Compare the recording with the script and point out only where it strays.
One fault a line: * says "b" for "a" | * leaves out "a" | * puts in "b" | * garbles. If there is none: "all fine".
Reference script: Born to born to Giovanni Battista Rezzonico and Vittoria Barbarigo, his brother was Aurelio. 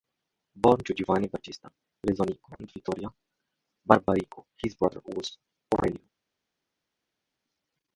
* leaves out "born to"